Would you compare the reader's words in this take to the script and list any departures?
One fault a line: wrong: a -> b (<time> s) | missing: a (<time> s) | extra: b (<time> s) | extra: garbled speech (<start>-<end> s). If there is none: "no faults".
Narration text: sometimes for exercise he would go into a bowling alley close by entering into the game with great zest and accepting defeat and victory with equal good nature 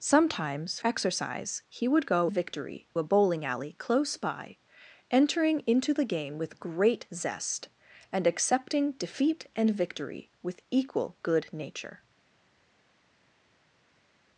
missing: for (0.8 s)
wrong: into -> victory (2.2 s)